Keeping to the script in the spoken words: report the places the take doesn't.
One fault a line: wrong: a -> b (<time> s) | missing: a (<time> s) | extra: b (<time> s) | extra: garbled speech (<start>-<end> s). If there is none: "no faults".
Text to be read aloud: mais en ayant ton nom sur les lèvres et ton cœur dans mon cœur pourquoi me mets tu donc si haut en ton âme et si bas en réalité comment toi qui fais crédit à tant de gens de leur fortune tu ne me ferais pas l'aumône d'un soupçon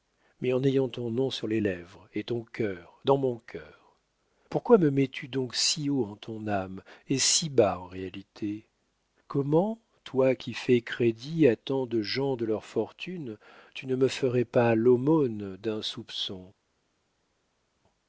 no faults